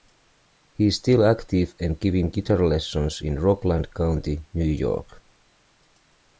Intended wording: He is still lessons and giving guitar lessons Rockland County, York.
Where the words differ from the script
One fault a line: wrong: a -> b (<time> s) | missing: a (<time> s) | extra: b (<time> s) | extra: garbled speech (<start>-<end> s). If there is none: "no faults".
wrong: lessons -> active (1.2 s)
extra: in (3.2 s)
extra: New (4.5 s)